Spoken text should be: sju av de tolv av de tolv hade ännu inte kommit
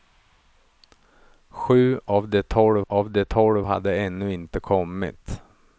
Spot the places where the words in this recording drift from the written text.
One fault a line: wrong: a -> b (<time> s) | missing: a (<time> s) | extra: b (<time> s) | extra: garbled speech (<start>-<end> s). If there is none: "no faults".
no faults